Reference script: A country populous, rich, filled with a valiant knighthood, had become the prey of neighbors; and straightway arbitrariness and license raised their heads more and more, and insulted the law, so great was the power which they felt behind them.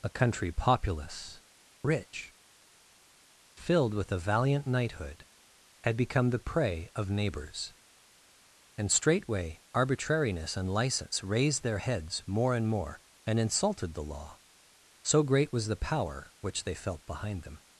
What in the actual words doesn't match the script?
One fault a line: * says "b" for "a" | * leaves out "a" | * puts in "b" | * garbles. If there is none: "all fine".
all fine